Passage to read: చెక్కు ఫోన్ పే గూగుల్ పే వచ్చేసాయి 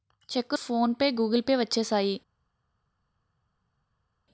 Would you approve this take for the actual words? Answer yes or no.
yes